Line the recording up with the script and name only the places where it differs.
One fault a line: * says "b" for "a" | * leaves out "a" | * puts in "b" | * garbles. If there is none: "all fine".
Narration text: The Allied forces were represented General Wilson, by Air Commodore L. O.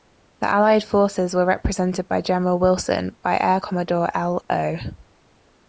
* puts in "by"